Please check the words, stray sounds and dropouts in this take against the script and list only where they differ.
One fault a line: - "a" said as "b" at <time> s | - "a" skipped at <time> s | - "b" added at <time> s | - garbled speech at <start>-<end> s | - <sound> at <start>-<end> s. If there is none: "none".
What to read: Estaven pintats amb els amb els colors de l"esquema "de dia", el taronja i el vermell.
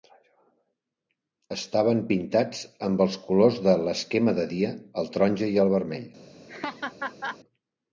- "amb els" skipped at 3.2 s
- laugh at 6.5-7.4 s